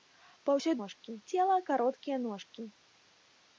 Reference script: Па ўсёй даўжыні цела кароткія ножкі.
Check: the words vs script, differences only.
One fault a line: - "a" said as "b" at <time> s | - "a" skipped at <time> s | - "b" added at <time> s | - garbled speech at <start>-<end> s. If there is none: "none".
- "даўжыні" said as "ножкі" at 0.8 s